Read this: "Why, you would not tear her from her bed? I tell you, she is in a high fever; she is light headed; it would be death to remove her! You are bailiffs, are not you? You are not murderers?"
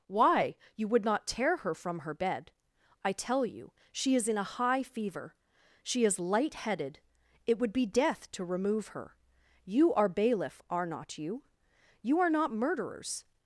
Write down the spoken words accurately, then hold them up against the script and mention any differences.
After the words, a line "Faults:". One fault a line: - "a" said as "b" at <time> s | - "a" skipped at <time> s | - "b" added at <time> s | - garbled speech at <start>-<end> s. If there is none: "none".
"Why, you would not tear her from her bed? I tell you, she is in a high fever; she is light headed; it would be death to remove her! You are bailiff, are not you? You are not murderers?"
Faults:
- "bailiffs" said as "bailiff" at 10.1 s